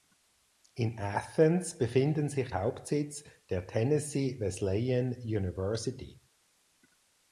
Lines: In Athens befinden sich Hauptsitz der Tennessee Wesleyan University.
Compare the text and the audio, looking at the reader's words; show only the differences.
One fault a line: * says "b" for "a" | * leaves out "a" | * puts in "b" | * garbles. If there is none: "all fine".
all fine